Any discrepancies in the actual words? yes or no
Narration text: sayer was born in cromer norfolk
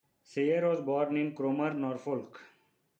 no